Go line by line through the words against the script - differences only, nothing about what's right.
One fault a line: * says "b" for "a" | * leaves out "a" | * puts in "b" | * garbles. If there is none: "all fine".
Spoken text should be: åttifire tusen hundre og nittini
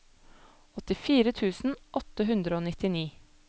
* puts in "åtte"